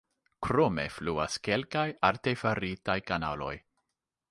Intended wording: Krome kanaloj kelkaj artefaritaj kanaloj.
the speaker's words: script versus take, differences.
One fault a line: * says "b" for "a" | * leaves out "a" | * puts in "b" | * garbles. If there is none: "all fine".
* says "fluas" for "kanaloj"